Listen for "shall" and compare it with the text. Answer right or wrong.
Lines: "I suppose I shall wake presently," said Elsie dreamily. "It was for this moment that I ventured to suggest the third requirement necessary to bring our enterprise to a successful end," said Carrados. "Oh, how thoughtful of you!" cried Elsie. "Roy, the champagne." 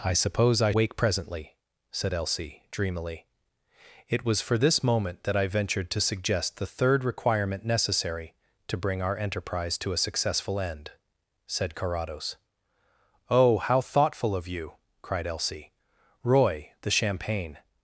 wrong